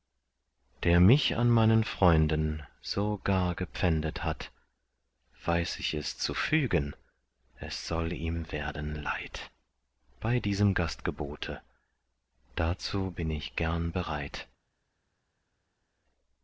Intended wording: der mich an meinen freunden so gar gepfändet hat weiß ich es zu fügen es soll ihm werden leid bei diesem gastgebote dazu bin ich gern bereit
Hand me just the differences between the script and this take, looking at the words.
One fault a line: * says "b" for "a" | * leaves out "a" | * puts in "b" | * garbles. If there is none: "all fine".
all fine